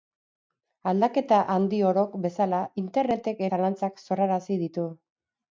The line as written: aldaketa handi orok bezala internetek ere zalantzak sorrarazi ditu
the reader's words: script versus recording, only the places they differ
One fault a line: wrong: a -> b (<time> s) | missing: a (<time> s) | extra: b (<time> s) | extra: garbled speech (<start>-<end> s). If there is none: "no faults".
missing: ere (3.4 s)